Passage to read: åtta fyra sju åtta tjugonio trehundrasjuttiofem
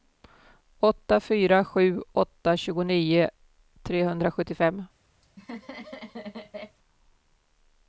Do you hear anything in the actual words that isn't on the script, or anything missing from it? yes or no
no